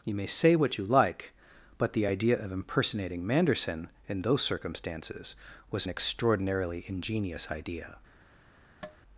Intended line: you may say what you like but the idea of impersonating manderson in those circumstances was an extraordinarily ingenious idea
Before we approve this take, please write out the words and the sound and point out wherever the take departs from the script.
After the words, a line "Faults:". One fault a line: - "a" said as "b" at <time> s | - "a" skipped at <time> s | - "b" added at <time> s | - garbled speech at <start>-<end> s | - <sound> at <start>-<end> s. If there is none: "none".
you may say what you like but the idea of impersonating manderson in those circumstances was an extraordinarily ingenious idea
Faults:
- tap at 8.8-9.0 s